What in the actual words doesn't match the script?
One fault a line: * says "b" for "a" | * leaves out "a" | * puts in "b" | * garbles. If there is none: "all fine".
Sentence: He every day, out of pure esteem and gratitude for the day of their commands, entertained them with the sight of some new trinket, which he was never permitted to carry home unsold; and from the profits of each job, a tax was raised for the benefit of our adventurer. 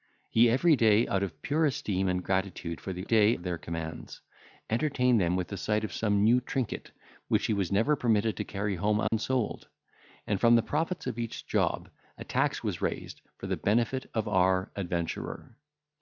all fine